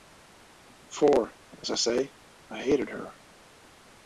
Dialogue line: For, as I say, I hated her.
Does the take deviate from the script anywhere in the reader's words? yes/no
no